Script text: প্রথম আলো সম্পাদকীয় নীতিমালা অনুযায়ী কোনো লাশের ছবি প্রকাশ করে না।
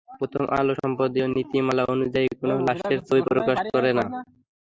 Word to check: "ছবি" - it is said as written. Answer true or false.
true